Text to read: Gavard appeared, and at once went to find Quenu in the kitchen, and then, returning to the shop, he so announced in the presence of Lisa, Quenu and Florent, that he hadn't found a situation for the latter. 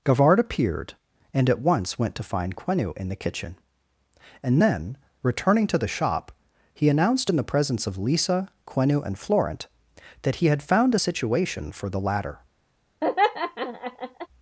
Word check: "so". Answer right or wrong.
wrong